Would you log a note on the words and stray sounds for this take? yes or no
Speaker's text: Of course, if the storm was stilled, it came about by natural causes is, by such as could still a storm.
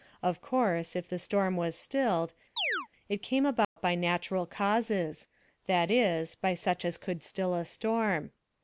yes